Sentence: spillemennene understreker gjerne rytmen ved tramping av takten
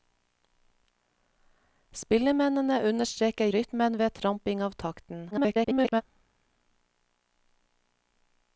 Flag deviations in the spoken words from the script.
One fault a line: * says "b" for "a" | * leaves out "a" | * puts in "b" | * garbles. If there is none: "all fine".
* leaves out "gjerne"
* garbles